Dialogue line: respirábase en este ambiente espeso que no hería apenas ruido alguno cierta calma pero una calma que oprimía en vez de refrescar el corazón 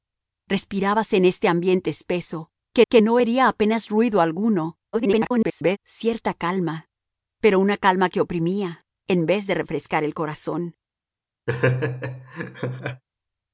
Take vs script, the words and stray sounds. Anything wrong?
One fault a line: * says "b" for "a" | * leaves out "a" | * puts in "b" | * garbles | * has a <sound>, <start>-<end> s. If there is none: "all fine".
* puts in "que"
* garbles
* has a laugh, 11.5-13.0 s